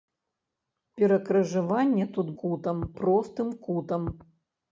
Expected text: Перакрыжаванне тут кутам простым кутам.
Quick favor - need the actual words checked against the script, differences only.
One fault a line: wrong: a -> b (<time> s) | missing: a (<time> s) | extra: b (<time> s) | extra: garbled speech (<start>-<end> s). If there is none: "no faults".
no faults